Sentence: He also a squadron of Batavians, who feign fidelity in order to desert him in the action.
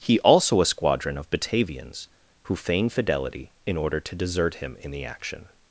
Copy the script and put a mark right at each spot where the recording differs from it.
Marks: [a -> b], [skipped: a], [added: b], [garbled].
He also a squadron of Batavians, who feign fidelity in order to desert him in the action.